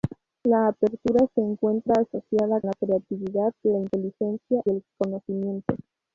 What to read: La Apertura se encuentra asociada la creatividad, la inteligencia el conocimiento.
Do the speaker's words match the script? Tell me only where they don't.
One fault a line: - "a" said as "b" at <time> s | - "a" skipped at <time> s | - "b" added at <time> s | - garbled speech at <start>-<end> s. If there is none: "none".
none